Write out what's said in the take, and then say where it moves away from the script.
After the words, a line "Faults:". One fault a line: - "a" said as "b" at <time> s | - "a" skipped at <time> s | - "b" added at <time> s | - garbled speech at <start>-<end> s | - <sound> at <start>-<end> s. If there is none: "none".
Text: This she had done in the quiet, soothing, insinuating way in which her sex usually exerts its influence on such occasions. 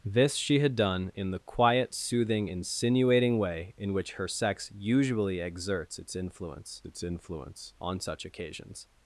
This she had done in the quiet, soothing, insinuating way in which her sex usually exerts its influence its influence on such occasions.
Faults:
- "its influence" added at 6.9 s